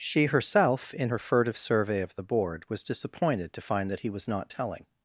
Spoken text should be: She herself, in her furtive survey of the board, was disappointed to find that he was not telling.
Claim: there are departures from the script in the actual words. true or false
false